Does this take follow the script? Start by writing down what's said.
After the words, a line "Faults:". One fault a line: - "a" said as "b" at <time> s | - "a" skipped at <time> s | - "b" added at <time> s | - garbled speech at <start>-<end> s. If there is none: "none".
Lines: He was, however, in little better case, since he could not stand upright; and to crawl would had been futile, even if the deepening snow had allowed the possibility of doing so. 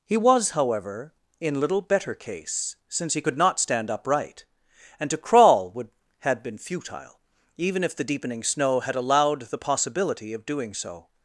He was, however, in little better case, since he could not stand upright; and to crawl would had been futile, even if the deepening snow had allowed the possibility of doing so.
Faults:
none